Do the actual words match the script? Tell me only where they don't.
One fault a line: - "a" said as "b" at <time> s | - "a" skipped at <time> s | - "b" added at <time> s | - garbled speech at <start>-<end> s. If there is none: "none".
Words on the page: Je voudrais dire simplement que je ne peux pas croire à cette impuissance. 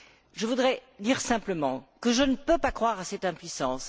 none